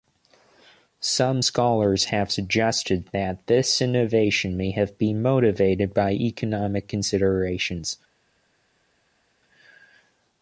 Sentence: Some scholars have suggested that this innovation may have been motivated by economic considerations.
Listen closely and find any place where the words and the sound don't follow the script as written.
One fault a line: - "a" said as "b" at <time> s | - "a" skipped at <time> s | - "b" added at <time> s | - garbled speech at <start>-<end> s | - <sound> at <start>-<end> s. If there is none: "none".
none